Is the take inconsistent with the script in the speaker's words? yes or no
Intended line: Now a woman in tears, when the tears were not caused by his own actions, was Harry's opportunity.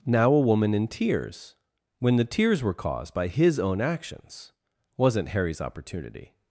yes